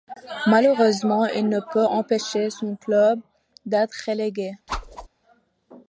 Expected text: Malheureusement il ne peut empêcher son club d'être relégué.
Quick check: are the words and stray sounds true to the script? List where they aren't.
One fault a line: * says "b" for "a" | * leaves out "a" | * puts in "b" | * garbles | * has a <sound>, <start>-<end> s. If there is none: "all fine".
* has a whoosh, 4.7-5.1 s